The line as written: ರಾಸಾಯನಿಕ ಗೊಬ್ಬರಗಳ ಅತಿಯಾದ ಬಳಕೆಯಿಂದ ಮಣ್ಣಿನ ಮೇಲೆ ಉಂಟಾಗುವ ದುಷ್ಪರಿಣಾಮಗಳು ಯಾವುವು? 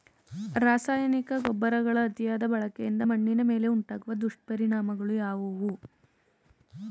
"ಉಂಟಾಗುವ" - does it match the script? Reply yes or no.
yes